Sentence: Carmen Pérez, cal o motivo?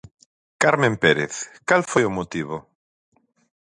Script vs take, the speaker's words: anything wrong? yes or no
yes